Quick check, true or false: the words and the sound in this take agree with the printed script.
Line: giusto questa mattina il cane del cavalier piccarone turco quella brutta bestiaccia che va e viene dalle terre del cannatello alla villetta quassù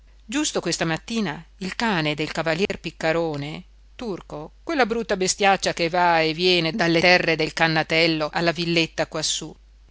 false